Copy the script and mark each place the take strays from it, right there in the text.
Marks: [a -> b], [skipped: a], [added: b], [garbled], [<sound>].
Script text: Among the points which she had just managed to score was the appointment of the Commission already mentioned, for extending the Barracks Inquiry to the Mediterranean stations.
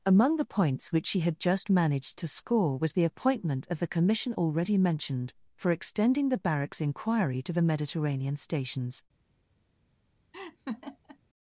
Among the points which she had just managed to score was the appointment of the Commission already mentioned, for extending the Barracks Inquiry to the Mediterranean stations. [laugh]